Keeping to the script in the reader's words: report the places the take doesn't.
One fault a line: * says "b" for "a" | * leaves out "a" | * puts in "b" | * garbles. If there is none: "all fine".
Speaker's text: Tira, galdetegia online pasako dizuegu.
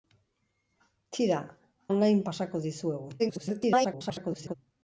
* leaves out "galdetegia"
* garbles